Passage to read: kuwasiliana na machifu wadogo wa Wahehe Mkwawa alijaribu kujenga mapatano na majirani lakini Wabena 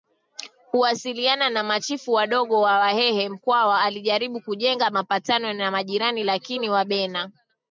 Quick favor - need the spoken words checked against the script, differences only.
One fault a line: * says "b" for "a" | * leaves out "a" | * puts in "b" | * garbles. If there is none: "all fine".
all fine